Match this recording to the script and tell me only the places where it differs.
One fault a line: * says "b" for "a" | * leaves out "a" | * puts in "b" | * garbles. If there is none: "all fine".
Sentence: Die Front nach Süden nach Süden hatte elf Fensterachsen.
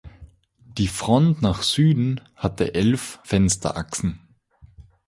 * leaves out "nach Süden"